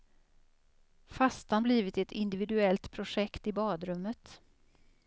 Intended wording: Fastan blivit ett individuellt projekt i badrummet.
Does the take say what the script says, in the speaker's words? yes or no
yes